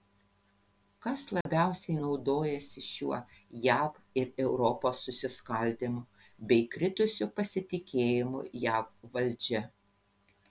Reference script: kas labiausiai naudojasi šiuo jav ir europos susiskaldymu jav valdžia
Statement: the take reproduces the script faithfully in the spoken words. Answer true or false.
false